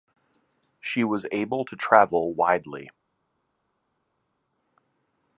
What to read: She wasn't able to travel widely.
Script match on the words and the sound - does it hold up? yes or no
no